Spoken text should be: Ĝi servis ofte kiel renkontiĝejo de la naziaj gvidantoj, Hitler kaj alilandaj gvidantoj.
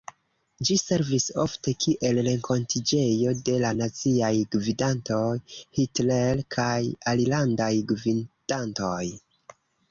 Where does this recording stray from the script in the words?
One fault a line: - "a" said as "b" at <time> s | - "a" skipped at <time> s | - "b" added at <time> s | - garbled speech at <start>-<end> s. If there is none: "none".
none